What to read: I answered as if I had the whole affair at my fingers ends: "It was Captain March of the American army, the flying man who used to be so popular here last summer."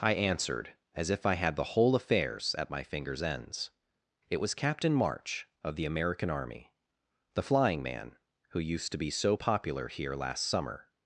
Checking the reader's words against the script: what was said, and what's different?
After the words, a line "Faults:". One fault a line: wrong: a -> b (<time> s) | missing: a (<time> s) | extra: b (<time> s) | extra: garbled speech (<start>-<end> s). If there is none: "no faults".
I answered as if I had the whole affairs at my fingers ends: "It was Captain March of the American army, the flying man who used to be so popular here last summer."
Faults:
wrong: affair -> affairs (1.9 s)